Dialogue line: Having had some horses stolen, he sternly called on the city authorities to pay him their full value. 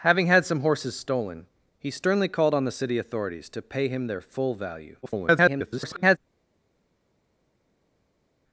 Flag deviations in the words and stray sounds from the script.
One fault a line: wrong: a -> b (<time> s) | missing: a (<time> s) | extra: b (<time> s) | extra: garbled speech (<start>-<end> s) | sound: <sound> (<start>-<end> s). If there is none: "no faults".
extra: garbled speech (5.0-6.2 s)